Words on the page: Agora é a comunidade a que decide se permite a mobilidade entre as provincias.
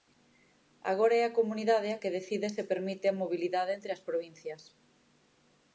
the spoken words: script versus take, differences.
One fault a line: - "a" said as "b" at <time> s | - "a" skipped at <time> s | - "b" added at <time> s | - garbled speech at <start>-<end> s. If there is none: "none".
none